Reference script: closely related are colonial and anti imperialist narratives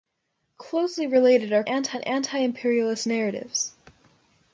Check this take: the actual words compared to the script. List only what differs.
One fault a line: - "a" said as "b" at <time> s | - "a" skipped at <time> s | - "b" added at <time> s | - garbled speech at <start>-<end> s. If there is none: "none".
- "colonial" said as "anti" at 1.7 s